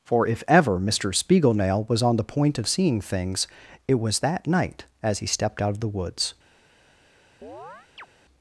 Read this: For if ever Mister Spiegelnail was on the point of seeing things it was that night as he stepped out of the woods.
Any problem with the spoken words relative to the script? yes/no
no